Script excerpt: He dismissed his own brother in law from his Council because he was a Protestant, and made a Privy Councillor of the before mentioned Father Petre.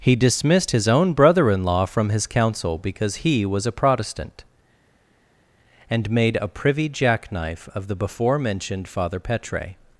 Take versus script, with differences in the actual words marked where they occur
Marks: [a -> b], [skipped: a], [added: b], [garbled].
He dismissed his own brother in law from his Council because he was a Protestant, and made a Privy [Councillor -> Jackknife] of the before mentioned Father Petre.